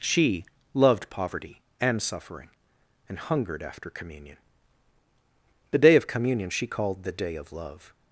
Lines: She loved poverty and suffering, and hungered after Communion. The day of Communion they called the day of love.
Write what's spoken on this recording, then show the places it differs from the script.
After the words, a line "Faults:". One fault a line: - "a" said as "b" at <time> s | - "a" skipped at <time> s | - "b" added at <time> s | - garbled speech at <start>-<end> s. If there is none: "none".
She loved poverty and suffering, and hungered after Communion. The day of Communion she called the day of love.
Faults:
- "they" said as "she" at 6.5 s